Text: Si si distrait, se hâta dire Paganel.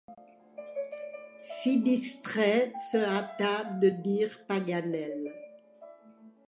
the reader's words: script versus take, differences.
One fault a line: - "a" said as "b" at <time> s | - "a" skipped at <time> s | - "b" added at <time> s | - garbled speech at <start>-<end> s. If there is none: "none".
- "si" skipped at 1.8 s
- "de" added at 3.6 s